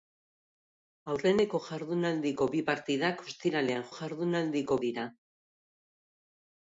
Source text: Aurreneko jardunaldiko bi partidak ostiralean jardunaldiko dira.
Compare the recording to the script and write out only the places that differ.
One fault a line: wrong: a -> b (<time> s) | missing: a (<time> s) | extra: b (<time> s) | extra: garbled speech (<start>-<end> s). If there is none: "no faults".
no faults